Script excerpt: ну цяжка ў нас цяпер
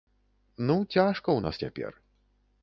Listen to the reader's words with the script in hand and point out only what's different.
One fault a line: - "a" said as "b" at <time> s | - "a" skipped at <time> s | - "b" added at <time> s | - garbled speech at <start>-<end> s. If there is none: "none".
none